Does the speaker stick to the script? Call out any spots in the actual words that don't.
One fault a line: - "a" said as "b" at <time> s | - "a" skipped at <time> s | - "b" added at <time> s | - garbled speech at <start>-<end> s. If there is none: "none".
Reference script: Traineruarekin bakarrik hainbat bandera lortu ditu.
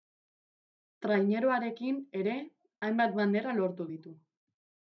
- "bakarrik" said as "ere" at 2.2 s